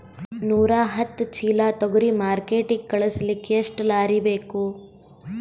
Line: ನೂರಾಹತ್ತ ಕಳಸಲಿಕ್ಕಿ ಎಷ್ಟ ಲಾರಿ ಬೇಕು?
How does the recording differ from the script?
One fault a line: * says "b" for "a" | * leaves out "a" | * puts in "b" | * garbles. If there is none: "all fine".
* puts in "ಚೀಲಾ ತೊಗರಿ ಮಾರ್ಕಿಟಿಗ"